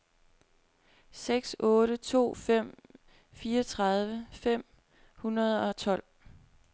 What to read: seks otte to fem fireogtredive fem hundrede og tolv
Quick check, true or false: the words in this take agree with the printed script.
true